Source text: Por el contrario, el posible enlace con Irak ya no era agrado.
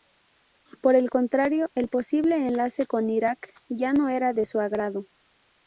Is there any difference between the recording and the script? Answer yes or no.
yes